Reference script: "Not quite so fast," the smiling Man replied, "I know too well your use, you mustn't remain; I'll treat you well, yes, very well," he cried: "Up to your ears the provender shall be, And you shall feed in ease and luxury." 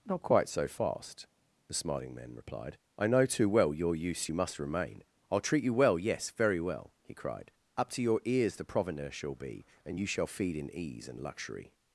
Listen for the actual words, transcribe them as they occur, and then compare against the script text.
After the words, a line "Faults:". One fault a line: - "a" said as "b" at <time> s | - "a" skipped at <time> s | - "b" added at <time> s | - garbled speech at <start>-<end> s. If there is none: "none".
"Not quite so fast," the smiling Man replied, "I know too well your use, you must remain; I'll treat you well, yes, very well," he cried: "Up to your ears the provender shall be, And you shall feed in ease and luxury."
Faults:
- "mustn't" said as "must" at 4.3 s